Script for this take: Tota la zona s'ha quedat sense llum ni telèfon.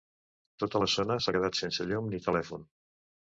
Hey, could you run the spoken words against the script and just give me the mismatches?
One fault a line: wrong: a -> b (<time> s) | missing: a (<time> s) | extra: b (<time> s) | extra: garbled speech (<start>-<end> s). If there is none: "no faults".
no faults